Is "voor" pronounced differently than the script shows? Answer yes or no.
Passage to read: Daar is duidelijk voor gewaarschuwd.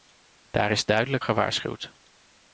yes